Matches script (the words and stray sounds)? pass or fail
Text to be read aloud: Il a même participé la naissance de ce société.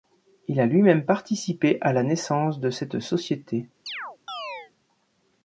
fail